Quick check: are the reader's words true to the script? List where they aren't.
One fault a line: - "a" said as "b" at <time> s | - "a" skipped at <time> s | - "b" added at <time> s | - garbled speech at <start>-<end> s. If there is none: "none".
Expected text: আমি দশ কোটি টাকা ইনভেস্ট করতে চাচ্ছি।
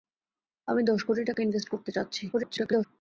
- garbled speech at 2.3-2.9 s